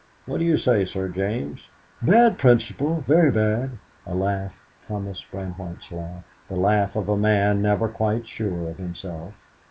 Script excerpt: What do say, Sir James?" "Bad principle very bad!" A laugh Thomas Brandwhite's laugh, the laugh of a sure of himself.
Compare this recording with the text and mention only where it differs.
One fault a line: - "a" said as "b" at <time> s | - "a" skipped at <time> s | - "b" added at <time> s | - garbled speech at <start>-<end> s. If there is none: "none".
- "you" added at 0.5 s
- "man never quite" added at 7.2 s